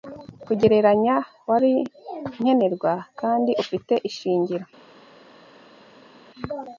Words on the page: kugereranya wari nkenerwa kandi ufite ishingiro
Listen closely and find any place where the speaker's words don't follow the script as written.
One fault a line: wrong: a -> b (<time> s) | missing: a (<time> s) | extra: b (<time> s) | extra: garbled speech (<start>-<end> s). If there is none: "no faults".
no faults